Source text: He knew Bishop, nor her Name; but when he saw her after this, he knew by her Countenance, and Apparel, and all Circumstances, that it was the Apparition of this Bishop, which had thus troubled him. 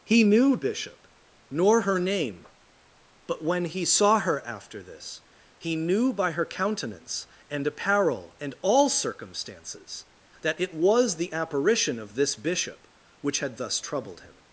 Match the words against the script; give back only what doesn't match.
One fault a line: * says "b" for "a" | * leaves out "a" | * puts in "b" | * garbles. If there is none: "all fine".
all fine